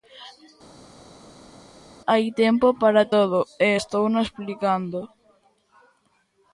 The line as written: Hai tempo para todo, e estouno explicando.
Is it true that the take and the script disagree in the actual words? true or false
false